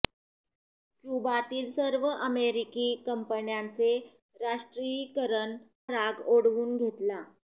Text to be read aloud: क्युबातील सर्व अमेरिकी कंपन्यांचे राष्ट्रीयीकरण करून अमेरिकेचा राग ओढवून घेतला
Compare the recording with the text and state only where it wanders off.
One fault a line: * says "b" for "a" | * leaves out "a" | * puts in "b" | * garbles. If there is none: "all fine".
* leaves out "करून अमेरिकेचा"